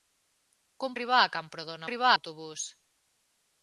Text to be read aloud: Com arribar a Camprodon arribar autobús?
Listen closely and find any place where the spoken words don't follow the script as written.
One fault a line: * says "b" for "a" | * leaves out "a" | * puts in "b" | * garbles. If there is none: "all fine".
all fine